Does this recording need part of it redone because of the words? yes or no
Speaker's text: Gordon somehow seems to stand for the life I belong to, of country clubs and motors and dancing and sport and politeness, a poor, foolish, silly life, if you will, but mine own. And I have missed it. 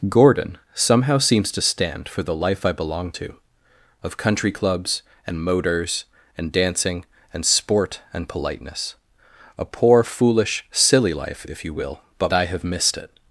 yes